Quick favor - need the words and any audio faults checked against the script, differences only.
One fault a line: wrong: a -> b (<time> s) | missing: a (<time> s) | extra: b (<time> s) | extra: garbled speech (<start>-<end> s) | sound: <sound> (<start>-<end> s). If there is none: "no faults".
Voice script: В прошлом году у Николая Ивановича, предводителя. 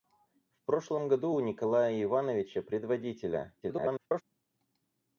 extra: garbled speech (3.6-4.2 s)